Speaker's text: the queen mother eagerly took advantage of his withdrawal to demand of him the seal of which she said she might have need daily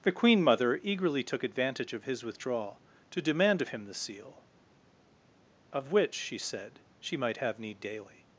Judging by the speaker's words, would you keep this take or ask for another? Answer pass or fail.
pass